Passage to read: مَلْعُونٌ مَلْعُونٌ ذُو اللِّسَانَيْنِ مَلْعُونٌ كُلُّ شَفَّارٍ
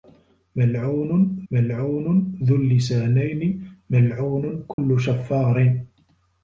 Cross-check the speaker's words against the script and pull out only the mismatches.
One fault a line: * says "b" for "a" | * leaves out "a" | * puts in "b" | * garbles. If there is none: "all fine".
all fine